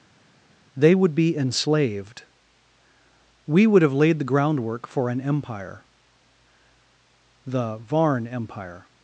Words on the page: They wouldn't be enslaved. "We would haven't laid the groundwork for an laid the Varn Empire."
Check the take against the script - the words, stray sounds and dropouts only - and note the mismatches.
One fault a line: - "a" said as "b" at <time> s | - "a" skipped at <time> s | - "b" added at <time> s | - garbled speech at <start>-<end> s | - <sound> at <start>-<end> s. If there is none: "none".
- "wouldn't" said as "would" at 0.9 s
- "haven't" said as "have" at 3.8 s
- "laid" said as "empire" at 5.2 s